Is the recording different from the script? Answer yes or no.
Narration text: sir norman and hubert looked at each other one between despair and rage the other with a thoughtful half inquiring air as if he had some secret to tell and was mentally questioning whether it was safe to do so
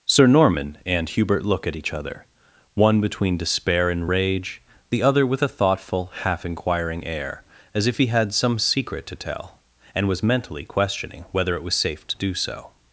yes